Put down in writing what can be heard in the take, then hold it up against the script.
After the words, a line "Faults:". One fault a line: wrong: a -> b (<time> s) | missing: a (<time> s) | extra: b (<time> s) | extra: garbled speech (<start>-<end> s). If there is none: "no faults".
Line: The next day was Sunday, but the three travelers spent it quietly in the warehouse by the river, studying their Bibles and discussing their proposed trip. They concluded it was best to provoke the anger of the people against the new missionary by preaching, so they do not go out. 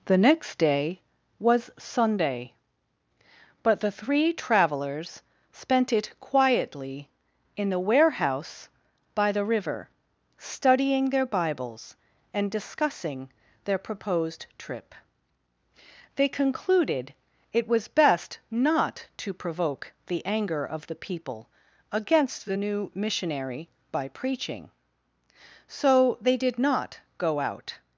The next day was Sunday, but the three travelers spent it quietly in the warehouse by the river, studying their Bibles and discussing their proposed trip. They concluded it was best not to provoke the anger of the people against the new missionary by preaching, so they did not go out.
Faults:
extra: not (18.5 s)
wrong: do -> did (26.4 s)